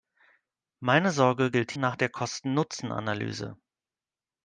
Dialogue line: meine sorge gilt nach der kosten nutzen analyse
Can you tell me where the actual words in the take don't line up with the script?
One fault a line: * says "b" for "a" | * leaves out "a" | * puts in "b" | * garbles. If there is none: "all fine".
all fine